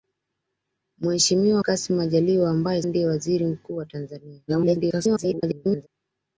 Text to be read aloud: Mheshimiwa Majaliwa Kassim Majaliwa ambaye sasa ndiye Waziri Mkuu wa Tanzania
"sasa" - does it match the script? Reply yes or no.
no